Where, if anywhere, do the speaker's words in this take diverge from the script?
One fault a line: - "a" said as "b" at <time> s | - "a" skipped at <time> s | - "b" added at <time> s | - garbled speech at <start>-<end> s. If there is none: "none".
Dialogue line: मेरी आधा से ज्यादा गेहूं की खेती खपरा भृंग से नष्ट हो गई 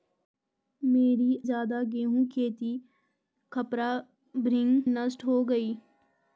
- "आधा से" skipped at 1.4 s
- "की" skipped at 2.2 s
- "से" skipped at 4.8 s